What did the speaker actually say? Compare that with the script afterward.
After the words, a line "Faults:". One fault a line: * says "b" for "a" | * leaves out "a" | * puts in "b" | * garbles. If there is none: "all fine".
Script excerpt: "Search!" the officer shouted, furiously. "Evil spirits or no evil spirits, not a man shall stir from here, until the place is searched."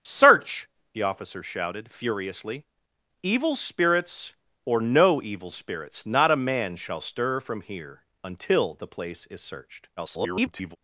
"Search!" the officer shouted, furiously. "Evil spirits or no evil spirits, not a man shall stir from here, until the place is searched." [garbled]
Faults:
* garbles